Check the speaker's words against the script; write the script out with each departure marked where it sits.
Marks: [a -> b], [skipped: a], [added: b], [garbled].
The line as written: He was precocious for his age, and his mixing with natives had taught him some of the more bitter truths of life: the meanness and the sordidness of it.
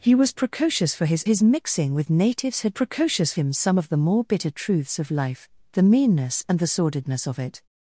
He was precocious for his [skipped: age, and] his mixing with natives had [taught -> precocious] him some of the more bitter truths of life: the meanness and the sordidness of it.